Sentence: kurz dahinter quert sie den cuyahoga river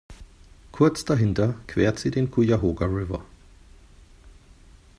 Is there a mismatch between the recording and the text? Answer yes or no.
no